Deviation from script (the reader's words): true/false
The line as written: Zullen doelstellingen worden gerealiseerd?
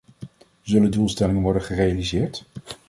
false